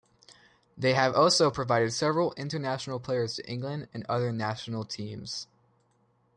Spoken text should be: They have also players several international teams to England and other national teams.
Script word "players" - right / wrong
wrong